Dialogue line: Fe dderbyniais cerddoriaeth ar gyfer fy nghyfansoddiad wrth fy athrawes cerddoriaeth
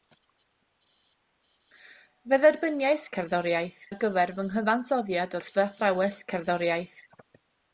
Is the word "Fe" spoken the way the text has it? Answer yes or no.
yes